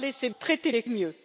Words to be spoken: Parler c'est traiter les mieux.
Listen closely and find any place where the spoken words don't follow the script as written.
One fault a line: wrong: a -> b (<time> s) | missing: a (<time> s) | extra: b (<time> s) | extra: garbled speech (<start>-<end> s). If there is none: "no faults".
no faults